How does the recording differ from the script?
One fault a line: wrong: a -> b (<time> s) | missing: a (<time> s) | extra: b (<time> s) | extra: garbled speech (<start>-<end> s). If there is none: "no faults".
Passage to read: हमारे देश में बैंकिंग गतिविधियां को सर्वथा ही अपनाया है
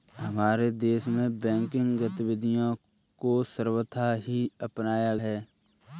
no faults